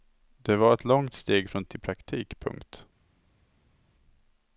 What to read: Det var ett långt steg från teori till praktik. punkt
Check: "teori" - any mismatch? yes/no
yes